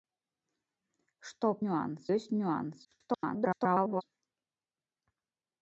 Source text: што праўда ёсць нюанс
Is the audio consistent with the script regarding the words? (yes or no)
no